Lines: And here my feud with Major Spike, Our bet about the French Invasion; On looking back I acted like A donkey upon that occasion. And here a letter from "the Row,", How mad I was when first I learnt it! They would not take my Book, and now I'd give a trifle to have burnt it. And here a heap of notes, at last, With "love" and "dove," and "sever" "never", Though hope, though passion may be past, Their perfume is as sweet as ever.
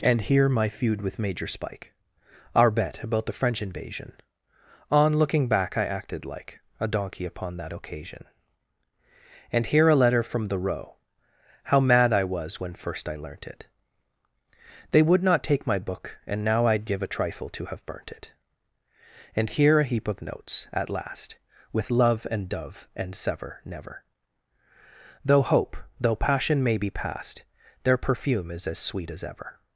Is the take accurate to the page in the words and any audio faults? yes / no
yes